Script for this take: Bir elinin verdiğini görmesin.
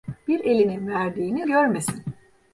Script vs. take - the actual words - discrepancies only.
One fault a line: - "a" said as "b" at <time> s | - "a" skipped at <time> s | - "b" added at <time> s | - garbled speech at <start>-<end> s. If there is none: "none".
none